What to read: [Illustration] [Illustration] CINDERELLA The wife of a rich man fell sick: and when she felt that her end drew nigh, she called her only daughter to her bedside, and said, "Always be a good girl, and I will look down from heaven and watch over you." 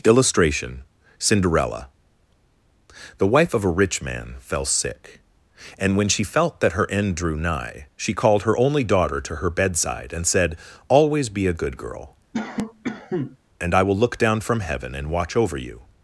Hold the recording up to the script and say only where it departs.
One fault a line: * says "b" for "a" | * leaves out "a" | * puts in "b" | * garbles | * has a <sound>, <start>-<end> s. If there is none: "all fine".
* leaves out "Illustration"
* has a cough, 12.3-13.4 s